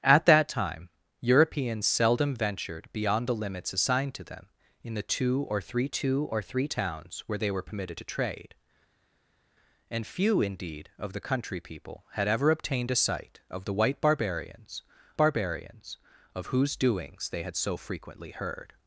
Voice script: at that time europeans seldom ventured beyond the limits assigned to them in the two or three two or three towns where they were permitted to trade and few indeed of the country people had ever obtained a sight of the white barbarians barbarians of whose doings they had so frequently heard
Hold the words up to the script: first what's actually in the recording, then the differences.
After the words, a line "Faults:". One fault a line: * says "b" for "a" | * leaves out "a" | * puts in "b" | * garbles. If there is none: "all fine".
at that time europeans seldom ventured beyond the limits assigned to them in the two or three two or three towns where they were permitted to trade and few indeed of the country people had ever obtained a sight of the white barbarians barbarians of whose doings they had so frequently heard
Faults:
all fine